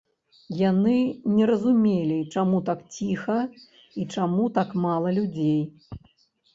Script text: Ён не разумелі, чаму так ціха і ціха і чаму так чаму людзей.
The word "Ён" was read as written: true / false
false